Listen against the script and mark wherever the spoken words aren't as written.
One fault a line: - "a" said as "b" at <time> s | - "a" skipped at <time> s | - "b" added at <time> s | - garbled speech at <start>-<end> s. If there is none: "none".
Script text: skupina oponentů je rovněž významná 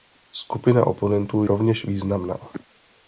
- "je" skipped at 1.4 s